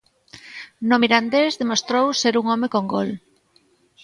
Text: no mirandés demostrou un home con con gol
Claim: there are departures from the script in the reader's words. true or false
true